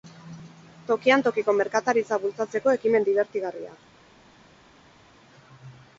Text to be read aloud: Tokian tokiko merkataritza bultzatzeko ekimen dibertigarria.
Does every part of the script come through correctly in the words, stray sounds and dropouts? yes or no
yes